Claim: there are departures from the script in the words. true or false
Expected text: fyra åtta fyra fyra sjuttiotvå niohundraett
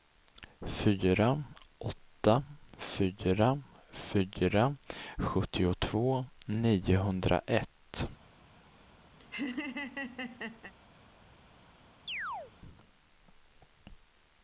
false